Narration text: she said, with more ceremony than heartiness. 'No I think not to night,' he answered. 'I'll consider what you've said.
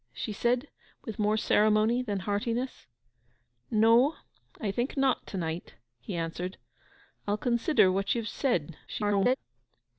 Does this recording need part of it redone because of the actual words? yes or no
yes